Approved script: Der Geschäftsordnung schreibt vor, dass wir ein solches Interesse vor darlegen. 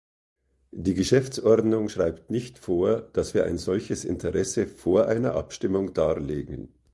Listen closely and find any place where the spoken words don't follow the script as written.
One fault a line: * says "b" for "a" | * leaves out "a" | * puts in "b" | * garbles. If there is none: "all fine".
* says "Die" for "Der"
* puts in "nicht"
* puts in "einer Abstimmung"